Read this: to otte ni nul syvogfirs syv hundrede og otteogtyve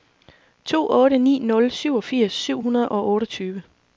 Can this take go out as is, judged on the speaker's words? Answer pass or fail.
pass